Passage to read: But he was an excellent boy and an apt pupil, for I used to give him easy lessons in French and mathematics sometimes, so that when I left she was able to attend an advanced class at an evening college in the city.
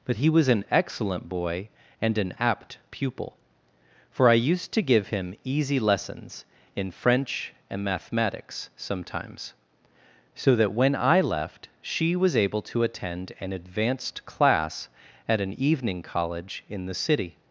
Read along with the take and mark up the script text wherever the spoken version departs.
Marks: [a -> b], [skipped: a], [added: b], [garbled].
But he was an excellent boy and an apt pupil, for I used to give him easy lessons in French and mathematics sometimes, so that when I left she was able to attend an advanced class at an evening college in the city.